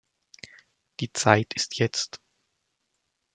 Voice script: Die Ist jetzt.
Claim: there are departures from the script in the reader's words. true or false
true